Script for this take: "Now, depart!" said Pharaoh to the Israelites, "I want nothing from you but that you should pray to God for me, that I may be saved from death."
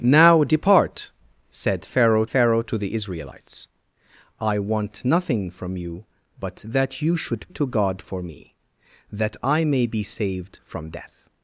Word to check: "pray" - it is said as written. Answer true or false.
false